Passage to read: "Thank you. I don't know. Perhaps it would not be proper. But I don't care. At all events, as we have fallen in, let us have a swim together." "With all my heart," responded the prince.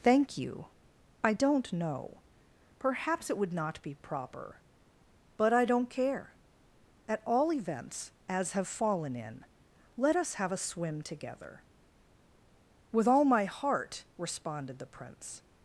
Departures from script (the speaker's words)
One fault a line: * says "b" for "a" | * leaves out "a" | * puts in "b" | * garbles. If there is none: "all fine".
* leaves out "we"